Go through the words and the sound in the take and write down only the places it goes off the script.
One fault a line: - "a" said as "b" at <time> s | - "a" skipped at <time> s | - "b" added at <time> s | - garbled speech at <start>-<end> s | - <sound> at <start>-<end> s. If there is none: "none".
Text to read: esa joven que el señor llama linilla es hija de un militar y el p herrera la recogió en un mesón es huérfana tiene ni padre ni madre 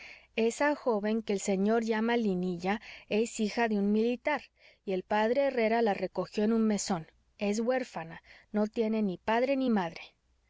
- "no" added at 8.5 s